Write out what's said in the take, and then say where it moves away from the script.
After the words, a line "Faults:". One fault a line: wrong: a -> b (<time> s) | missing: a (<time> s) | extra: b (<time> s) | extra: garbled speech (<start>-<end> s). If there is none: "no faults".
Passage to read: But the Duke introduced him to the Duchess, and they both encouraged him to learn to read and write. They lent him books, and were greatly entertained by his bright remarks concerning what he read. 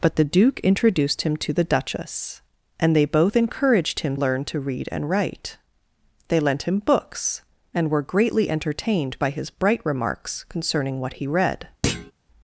But the Duke introduced him to the Duchess, and they both encouraged him learn to read and write. They lent him books, and were greatly entertained by his bright remarks concerning what he read.
Faults:
missing: to (4.2 s)